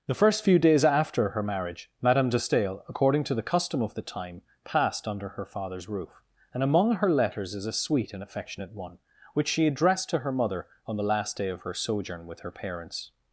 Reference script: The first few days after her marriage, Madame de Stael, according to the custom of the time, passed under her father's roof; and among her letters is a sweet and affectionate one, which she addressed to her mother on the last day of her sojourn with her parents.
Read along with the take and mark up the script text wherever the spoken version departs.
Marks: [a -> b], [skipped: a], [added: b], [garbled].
The first few days after her marriage, Madame de Stael, according to the custom of the time, passed under her father's roof; and among her letters is a sweet and affectionate one, which she addressed to her mother on the last day of her sojourn with her parents.